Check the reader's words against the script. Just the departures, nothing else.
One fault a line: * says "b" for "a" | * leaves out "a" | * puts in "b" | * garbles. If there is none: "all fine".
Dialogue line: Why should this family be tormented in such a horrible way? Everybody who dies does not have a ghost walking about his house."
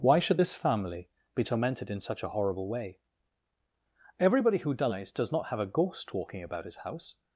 all fine